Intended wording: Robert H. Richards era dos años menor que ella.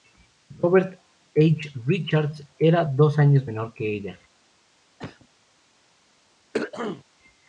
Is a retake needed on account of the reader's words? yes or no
no